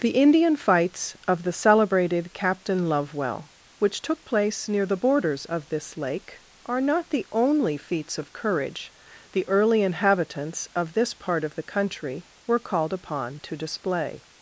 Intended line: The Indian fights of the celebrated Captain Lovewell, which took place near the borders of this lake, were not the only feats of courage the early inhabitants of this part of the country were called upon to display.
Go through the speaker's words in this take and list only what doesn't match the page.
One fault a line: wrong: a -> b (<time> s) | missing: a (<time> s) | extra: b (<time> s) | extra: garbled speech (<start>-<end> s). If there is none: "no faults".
wrong: were -> are (6.7 s)